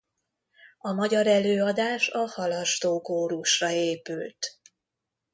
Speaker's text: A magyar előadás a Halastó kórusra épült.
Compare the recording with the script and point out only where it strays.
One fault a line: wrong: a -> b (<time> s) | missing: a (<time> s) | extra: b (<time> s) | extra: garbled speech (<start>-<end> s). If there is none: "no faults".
no faults